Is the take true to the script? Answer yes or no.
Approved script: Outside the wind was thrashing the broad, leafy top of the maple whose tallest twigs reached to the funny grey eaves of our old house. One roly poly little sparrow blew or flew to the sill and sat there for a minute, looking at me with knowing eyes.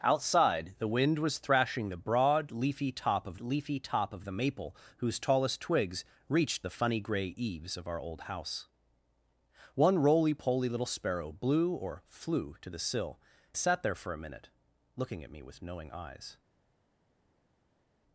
no